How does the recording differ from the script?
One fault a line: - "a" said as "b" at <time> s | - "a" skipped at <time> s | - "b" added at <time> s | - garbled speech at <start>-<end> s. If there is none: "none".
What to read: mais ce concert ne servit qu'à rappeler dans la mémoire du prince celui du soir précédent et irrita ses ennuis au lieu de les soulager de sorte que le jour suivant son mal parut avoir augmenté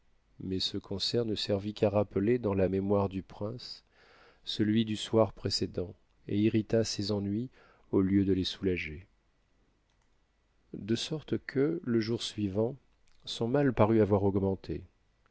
none